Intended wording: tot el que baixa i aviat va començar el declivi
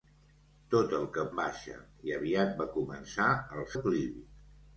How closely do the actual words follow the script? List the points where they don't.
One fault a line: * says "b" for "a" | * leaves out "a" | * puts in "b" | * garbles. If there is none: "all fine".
all fine